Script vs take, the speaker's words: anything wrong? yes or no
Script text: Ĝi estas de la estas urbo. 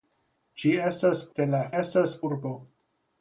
no